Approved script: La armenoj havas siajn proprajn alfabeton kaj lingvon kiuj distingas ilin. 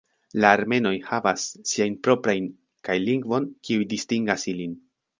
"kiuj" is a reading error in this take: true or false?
false